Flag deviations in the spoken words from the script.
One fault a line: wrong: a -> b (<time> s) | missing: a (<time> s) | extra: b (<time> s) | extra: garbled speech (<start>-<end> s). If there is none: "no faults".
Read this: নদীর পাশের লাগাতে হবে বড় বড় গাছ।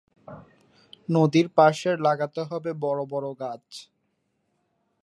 no faults